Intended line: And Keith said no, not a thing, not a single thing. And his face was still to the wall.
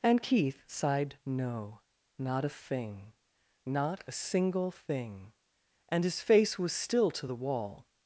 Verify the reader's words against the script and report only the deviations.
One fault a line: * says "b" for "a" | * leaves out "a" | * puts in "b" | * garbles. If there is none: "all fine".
* says "sighed" for "said"